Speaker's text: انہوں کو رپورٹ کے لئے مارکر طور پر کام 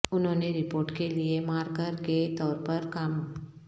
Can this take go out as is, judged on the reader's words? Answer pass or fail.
fail